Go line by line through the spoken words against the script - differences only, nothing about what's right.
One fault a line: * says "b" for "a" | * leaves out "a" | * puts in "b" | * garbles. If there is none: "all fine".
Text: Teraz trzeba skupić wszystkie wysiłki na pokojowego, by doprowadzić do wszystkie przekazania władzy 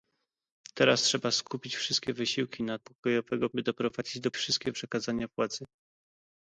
all fine